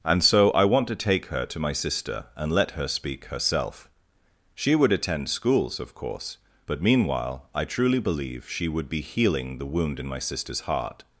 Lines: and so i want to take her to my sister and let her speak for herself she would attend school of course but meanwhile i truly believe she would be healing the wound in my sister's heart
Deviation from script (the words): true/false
true